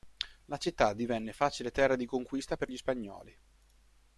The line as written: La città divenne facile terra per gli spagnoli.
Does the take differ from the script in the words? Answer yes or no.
yes